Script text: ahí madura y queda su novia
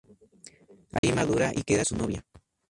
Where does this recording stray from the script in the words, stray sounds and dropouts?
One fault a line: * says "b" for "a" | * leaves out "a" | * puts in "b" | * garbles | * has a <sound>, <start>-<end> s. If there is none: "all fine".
* has a dropout, 1.0-1.0 s